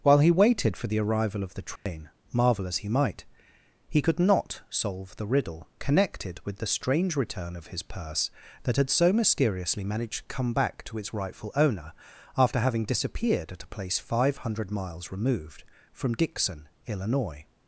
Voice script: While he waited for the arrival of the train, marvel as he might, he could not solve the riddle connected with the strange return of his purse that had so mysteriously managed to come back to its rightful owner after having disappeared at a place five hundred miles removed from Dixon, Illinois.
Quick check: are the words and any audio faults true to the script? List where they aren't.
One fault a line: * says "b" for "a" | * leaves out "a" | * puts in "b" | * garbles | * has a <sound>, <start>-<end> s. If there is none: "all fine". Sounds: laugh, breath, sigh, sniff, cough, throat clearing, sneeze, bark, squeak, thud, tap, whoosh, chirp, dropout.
* has a dropout, 1.8-1.9 s